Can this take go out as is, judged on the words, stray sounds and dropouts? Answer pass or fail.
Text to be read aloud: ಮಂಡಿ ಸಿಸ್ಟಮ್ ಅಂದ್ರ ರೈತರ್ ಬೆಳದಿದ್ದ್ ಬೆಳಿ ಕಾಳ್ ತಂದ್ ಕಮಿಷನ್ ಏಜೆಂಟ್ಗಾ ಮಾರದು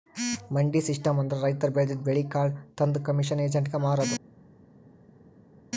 pass